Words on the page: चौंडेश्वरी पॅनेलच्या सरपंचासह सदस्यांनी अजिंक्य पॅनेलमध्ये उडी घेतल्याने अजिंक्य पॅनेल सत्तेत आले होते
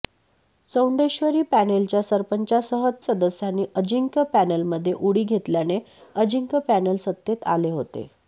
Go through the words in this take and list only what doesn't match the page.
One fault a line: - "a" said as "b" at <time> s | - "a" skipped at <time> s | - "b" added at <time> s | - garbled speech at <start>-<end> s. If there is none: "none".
none